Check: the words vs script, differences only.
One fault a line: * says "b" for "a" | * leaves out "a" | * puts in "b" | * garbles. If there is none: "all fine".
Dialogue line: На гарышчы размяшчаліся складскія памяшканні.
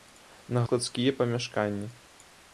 * leaves out "гарышчы размяшчаліся"